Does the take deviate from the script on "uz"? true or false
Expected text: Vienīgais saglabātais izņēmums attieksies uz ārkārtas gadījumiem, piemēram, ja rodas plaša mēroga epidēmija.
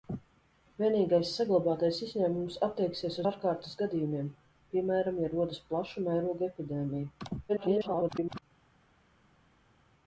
true